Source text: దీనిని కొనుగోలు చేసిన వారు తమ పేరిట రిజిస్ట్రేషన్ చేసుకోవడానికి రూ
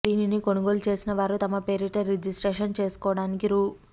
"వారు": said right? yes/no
yes